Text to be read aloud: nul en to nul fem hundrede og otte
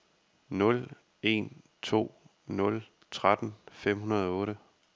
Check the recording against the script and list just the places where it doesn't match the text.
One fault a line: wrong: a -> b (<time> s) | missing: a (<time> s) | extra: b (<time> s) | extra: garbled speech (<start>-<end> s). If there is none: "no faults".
extra: tretten (3.1 s)